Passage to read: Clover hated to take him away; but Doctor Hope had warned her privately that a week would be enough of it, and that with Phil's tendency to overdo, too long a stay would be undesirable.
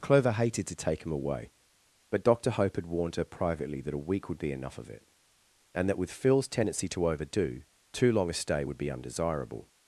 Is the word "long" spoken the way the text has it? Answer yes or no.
yes